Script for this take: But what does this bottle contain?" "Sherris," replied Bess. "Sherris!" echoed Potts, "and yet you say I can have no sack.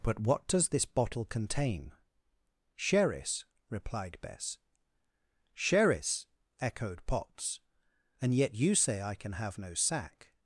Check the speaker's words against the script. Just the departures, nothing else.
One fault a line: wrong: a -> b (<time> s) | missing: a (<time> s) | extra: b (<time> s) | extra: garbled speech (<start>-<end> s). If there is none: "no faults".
no faults